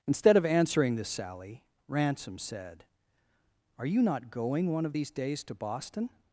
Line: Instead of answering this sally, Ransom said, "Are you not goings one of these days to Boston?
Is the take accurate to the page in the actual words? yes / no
no